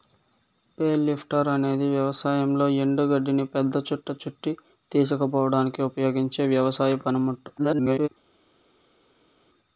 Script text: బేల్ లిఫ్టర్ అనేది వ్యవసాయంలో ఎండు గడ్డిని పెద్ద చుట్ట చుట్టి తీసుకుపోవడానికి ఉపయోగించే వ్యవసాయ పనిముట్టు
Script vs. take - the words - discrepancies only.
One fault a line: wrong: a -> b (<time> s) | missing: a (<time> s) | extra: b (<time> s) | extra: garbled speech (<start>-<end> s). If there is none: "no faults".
extra: garbled speech (7.6-8.1 s)